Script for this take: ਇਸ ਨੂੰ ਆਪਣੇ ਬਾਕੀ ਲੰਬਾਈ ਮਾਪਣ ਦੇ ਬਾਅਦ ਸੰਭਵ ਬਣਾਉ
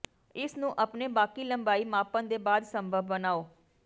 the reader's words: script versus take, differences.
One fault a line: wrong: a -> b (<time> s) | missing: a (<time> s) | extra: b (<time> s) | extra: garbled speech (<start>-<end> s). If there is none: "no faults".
no faults